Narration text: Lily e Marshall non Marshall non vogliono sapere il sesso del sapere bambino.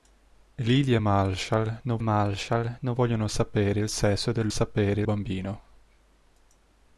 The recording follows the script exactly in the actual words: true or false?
true